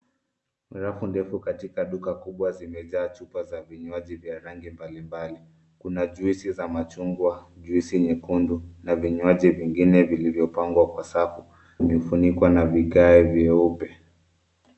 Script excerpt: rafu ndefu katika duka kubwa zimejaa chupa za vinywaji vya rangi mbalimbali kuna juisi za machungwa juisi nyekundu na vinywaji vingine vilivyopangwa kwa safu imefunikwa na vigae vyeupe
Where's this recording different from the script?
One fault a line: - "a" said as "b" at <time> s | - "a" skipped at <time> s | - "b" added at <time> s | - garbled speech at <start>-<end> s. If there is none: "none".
none